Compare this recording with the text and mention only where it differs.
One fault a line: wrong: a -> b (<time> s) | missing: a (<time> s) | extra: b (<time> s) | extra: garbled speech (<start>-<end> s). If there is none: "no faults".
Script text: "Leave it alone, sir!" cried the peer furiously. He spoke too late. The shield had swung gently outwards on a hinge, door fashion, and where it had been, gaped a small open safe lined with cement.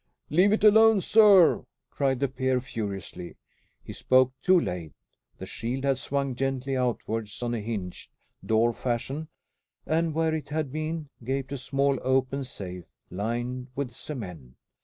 no faults